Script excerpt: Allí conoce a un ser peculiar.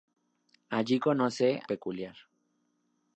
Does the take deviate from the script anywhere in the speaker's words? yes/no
yes